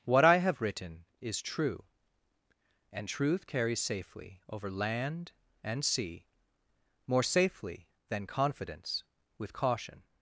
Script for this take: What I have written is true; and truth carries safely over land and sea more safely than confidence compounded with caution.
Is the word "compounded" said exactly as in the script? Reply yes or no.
no